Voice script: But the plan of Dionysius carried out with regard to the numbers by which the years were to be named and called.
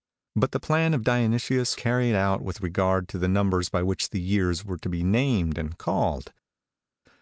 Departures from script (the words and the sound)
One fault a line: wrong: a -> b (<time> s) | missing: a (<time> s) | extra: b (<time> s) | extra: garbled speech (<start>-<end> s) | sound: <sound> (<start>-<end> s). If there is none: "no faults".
no faults